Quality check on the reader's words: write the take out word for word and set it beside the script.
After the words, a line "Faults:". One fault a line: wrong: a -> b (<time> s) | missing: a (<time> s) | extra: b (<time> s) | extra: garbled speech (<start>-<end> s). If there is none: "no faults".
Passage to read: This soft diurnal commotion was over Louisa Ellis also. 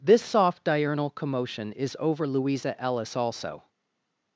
This soft diurnal commotion is over Louisa Ellis also.
Faults:
wrong: was -> is (1.7 s)